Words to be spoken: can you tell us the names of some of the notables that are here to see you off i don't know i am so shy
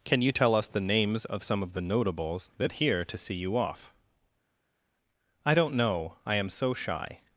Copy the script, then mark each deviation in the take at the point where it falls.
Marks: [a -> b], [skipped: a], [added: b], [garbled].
can you tell us the names of some of the notables that [skipped: are] here to see you off i don't know i am so shy